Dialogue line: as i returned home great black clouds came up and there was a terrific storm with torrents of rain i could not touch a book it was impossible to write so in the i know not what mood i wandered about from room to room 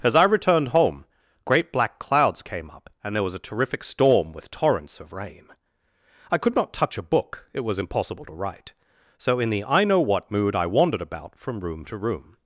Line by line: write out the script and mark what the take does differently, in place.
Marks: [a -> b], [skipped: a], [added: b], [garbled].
as i returned home great black clouds came up and there was a terrific storm with torrents of rain i could not touch a book it was impossible to write so in the i know [skipped: not] what mood i wandered about from room to room